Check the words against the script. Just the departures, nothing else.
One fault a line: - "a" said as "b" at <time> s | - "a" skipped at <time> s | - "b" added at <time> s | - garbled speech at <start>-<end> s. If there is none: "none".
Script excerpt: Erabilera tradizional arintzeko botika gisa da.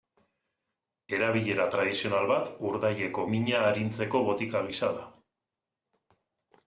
- "bat urdaileko mina" added at 2.3 s